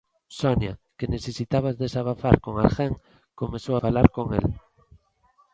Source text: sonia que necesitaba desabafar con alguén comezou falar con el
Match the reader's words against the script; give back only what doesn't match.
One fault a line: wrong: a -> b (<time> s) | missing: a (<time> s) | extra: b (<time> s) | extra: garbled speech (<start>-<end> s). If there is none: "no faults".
no faults